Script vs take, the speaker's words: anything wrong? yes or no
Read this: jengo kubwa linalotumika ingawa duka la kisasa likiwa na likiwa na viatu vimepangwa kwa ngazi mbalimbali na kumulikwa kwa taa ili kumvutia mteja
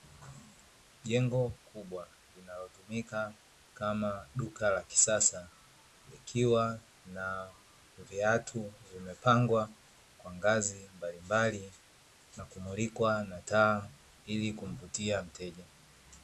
yes